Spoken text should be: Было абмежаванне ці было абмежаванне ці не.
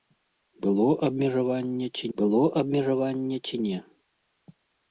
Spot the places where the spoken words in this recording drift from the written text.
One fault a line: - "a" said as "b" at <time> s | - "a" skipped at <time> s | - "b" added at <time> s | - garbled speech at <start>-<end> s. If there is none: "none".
none